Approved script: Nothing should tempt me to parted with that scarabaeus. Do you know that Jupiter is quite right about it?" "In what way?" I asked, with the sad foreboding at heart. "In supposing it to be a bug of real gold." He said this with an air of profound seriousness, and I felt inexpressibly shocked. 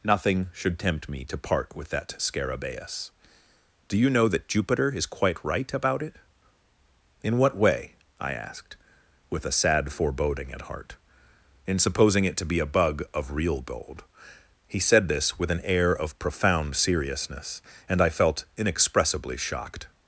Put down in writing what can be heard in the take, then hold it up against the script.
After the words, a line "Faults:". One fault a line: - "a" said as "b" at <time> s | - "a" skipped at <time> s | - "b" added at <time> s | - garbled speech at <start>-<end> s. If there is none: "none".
Nothing should tempt me to part with that scarabaeus. Do you know that Jupiter is quite right about it?" "In what way?" I asked, with a sad foreboding at heart. "In supposing it to be a bug of real gold." He said this with an air of profound seriousness, and I felt inexpressibly shocked.
Faults:
- "parted" said as "part" at 1.4 s
- "the" said as "a" at 9.4 s